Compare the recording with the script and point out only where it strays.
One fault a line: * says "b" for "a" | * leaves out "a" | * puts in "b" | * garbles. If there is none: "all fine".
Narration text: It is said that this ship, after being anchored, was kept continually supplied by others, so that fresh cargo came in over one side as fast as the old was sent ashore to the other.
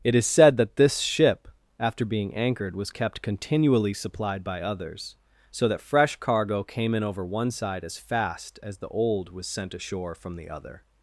* says "from" for "to"